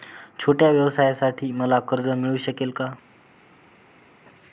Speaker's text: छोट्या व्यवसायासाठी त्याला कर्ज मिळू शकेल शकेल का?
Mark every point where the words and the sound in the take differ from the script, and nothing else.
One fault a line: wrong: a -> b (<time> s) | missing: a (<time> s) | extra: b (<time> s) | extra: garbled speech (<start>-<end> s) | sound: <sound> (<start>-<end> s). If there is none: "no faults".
wrong: त्याला -> मला (1.5 s)
missing: शकेल (2.7 s)